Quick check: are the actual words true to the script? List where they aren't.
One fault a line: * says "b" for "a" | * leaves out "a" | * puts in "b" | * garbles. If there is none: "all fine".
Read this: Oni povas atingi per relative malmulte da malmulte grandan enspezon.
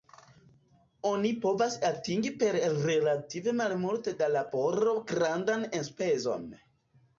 * says "laboro" for "malmulte"